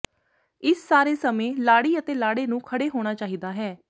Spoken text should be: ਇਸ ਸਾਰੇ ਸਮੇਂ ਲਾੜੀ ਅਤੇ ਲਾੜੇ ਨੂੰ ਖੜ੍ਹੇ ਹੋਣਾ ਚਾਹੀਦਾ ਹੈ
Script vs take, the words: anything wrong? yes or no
no